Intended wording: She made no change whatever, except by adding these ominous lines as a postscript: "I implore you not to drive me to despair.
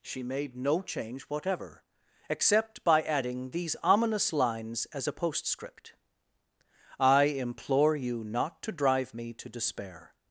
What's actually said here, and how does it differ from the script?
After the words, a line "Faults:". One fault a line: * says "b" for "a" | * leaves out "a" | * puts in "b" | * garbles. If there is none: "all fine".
She made no change whatever, except by adding these ominous lines as a postscript: "I implore you not to drive me to despair.
Faults:
all fine